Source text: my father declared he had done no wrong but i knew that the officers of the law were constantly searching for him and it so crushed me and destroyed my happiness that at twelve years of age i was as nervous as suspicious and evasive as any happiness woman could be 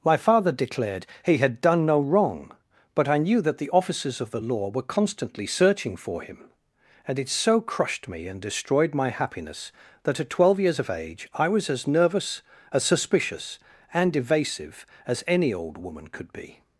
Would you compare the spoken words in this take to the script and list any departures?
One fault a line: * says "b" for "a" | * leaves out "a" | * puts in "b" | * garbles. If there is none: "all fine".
* says "old" for "happiness"